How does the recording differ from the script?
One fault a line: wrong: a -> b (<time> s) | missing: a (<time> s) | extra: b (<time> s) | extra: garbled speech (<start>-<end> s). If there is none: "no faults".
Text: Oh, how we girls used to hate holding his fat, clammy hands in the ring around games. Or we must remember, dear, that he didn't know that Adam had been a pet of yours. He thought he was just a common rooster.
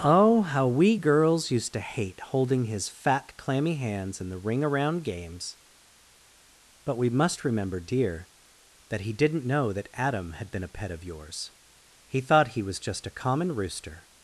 wrong: Or -> But (6.9 s)